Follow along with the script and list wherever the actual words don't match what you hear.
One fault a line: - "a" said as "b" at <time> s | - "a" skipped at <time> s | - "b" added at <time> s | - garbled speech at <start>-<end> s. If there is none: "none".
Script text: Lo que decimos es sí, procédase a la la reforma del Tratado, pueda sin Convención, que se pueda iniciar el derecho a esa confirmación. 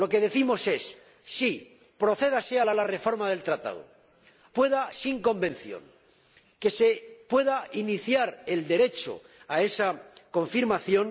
none